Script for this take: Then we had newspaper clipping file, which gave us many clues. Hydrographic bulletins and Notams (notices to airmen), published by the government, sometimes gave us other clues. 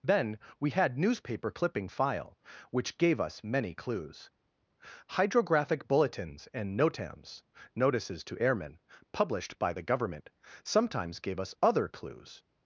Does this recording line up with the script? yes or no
yes